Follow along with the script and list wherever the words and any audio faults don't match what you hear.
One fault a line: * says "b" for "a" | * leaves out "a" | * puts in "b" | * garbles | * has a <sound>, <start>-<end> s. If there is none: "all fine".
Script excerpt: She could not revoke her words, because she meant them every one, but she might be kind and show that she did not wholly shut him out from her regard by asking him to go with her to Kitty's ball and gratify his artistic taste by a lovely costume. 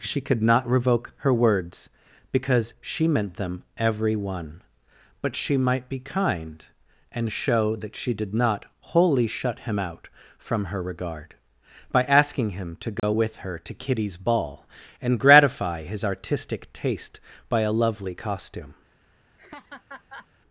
* has a dropout, 13.0-13.0 s
* has a laugh, 19.4-20.3 s